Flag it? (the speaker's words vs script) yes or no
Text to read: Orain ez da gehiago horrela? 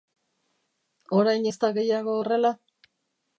no